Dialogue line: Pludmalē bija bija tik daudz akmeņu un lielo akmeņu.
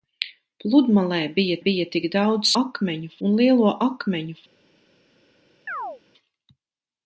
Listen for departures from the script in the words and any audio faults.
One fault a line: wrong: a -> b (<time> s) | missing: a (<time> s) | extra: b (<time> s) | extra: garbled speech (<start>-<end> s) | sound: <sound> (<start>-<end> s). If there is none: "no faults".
sound: chirp (5.7-6.0 s)